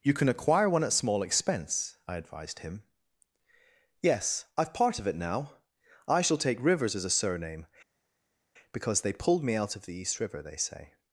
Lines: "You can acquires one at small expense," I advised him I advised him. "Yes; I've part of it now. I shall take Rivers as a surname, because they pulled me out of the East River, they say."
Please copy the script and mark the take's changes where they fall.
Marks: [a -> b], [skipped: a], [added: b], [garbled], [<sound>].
"You can [acquires -> acquire] one at small expense," I advised him [skipped: I advised him.] "Yes; I've part of it now. I shall take Rivers as a surname, because they pulled me out of the East River, they say."